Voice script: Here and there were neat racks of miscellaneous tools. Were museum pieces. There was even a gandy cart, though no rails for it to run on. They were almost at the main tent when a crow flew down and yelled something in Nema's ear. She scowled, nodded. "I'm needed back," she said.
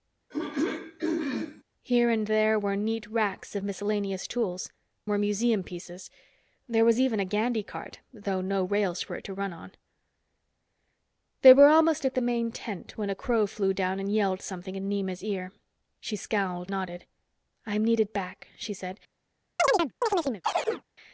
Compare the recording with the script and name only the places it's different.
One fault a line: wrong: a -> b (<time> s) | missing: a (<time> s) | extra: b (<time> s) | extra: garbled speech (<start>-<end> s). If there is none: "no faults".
no faults